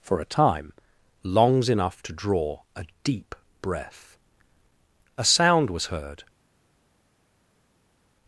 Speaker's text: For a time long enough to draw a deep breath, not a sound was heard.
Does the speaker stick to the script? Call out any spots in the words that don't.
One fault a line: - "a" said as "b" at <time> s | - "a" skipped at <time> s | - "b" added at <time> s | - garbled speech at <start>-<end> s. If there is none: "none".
- "long" said as "longs" at 1.2 s
- "not" skipped at 4.2 s